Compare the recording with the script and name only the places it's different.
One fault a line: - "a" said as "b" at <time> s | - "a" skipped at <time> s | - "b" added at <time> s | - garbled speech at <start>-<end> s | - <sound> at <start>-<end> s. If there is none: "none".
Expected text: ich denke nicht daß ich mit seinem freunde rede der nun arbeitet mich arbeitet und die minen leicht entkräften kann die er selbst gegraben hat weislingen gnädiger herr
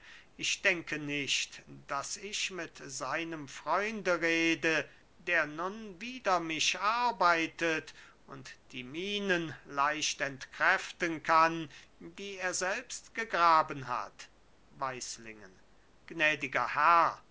- "arbeitet" said as "wider" at 6.0 s